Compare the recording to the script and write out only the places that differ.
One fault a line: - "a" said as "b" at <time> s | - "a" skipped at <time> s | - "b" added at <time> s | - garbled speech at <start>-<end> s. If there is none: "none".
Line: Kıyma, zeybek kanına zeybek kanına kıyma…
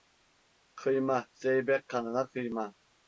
- "zeybek kanına" skipped at 2.3 s